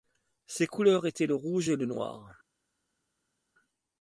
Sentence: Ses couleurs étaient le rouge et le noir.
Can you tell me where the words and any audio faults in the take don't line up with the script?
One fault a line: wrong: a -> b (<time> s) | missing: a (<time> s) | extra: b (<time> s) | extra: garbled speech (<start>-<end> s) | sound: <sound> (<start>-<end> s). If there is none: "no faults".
no faults